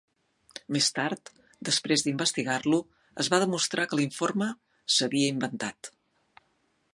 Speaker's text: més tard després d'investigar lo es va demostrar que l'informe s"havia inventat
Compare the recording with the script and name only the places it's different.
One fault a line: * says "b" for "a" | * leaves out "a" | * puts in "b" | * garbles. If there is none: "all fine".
all fine